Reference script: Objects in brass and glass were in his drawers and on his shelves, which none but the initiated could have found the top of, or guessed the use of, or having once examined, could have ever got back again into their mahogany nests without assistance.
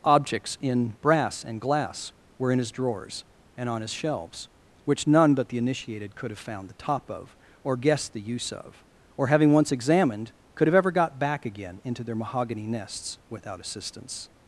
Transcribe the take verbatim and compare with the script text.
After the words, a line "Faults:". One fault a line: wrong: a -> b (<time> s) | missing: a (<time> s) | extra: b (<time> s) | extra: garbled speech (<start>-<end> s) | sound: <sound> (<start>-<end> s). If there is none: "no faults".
Objects in brass and glass were in his drawers and on his shelves, which none but the initiated could have found the top of, or guessed the use of, or having once examined, could have ever got back again into their mahogany nests without assistance.
Faults:
no faults